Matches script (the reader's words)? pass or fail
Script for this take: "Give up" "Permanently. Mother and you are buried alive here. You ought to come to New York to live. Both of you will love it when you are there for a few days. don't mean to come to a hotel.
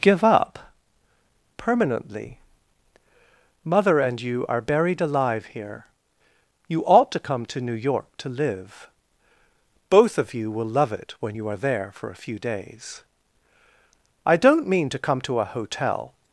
fail